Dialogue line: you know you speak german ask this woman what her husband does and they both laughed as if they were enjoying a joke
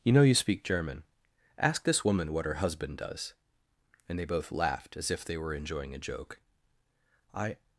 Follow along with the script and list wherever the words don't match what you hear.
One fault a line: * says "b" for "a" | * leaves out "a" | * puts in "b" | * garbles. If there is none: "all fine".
* puts in "i"